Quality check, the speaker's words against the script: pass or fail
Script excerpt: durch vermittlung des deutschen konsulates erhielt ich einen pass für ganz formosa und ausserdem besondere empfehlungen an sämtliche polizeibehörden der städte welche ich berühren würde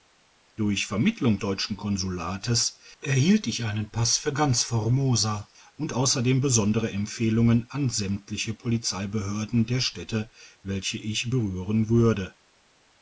fail